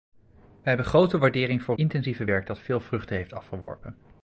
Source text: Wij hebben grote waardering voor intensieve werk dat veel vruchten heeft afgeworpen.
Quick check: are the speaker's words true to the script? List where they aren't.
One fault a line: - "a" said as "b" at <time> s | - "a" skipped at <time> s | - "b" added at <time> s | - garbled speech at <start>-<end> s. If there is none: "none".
none